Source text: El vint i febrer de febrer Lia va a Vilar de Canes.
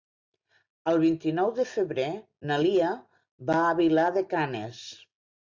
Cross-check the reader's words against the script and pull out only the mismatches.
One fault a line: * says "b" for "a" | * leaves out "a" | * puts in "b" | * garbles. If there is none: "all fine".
* says "nou" for "febrer"
* puts in "na"